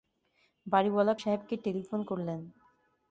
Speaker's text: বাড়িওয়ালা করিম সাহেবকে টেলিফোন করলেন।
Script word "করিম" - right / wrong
wrong